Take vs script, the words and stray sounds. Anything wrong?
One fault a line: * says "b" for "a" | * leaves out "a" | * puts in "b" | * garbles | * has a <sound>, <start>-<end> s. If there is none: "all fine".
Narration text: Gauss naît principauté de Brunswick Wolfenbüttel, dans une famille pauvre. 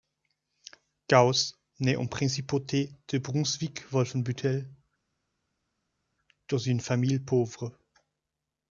* puts in "en"